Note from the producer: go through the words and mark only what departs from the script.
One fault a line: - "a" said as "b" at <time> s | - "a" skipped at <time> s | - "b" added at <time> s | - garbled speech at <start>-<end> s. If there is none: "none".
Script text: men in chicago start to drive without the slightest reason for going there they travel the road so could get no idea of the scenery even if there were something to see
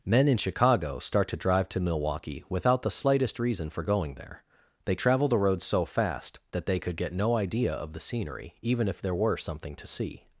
- "to milwaukee" added at 1.7 s
- "fast that they" added at 5.8 s